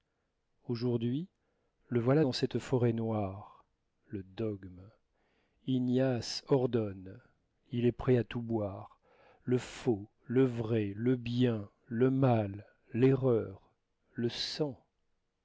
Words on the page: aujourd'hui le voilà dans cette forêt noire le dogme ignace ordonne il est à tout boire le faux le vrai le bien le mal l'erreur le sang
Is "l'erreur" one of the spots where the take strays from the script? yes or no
no